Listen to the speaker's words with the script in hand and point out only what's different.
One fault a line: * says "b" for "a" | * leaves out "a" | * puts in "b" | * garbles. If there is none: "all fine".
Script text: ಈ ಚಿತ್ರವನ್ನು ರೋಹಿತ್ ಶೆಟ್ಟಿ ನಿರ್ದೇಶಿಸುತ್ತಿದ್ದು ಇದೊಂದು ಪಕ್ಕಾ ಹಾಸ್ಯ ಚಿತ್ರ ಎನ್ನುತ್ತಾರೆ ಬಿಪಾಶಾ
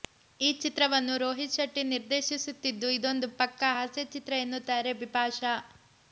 all fine